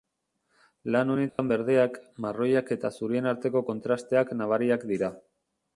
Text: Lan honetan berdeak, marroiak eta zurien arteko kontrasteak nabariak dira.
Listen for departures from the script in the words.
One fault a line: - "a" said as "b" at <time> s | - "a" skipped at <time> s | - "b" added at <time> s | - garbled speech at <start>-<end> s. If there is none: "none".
none